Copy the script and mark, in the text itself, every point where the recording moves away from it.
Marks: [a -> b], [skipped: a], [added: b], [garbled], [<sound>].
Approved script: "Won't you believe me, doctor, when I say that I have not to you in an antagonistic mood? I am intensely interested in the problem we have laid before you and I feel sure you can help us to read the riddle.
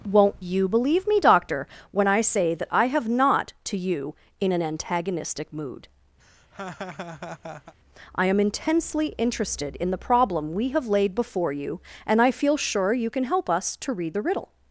"Won't you believe me, doctor, when I say that I have not to you in an antagonistic mood? [laugh] I am intensely interested in the problem we have laid before you and I feel sure you can help us to read the riddle.